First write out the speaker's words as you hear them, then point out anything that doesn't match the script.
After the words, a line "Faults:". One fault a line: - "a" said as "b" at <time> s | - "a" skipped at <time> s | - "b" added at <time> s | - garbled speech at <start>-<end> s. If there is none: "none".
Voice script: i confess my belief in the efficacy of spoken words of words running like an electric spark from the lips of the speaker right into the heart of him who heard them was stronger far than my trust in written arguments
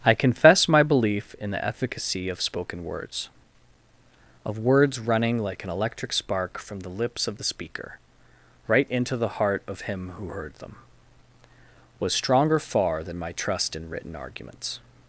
i confess my belief in the efficacy of spoken words of words running like an electric spark from the lips of the speaker right into the heart of him who heard them was stronger far than my trust in written arguments
Faults:
none